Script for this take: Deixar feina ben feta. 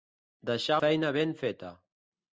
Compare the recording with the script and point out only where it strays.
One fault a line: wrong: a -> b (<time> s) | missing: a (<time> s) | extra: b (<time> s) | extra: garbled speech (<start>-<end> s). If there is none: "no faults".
no faults